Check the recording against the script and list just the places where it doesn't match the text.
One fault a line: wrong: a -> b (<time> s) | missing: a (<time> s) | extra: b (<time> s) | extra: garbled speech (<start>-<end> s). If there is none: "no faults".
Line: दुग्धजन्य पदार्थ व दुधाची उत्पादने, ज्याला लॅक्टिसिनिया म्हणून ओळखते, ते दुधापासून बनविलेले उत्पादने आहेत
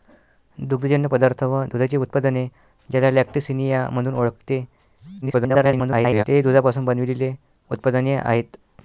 extra: garbled speech (5.2-6.2 s)